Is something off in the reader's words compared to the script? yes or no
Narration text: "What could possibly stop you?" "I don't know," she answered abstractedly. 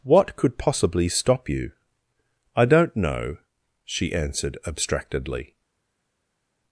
no